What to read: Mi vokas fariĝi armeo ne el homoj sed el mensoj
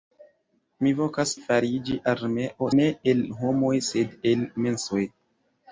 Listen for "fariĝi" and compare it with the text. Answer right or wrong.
right